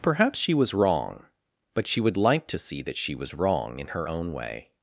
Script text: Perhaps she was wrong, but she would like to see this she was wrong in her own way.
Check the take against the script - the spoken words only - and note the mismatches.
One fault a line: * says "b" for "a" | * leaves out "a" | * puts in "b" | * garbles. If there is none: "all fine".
* says "that" for "this"